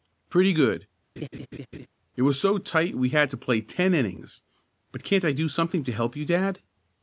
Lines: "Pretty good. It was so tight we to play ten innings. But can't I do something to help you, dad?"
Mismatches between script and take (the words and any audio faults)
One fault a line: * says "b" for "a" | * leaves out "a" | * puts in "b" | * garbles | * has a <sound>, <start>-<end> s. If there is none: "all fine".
* has a laugh, 1.2-1.9 s
* puts in "had"